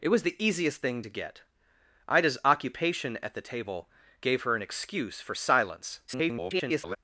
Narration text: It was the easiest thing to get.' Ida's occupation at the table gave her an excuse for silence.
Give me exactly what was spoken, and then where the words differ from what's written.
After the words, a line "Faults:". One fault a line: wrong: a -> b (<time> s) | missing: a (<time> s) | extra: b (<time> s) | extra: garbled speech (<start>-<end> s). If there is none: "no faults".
It was the easiest thing to get.' Ida's occupation at the table gave her an excuse for silence. [garbled]
Faults:
extra: garbled speech (6.1-7.0 s)